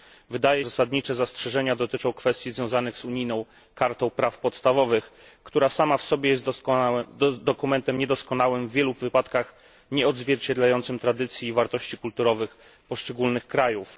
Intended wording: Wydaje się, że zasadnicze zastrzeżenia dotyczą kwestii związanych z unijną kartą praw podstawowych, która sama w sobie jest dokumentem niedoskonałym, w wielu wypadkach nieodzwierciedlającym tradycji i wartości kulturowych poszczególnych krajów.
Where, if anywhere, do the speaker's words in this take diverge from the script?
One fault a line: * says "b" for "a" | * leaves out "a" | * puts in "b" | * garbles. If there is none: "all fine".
* leaves out "się że"